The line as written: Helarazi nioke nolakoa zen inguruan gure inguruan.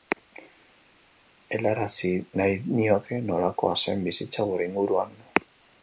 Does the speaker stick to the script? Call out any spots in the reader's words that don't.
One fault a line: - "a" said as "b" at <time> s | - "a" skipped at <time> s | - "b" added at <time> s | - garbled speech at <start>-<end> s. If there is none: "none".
- "nahi" added at 2.4 s
- "inguruan" said as "bizitza" at 4.1 s